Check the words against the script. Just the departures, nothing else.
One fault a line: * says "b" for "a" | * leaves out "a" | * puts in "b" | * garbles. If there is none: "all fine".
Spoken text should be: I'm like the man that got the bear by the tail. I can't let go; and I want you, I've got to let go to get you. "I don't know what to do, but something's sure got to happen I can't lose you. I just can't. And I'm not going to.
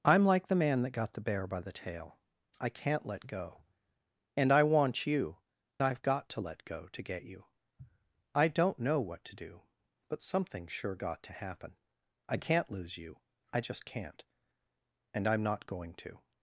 all fine